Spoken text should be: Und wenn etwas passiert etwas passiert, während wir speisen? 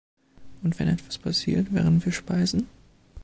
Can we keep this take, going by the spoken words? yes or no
no